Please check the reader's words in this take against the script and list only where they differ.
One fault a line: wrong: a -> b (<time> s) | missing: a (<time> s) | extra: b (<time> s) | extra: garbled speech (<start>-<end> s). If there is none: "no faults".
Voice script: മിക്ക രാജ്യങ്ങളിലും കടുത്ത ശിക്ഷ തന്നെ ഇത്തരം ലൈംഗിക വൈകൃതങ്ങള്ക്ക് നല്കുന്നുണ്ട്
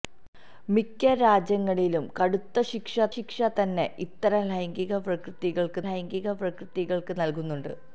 extra: ശിക്ഷ (3.1 s)
extra: ലൈംഗിക വൈകൃതങ്ങള്ക്ക് (5.9 s)